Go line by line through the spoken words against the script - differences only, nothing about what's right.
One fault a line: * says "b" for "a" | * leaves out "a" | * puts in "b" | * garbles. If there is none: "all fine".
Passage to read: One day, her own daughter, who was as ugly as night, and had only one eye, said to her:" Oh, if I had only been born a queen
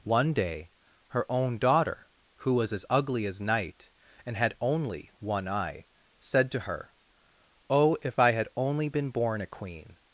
all fine